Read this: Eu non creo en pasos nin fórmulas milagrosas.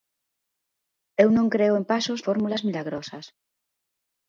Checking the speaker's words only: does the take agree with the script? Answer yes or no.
no